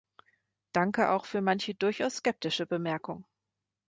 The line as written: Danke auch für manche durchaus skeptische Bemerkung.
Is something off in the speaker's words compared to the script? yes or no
no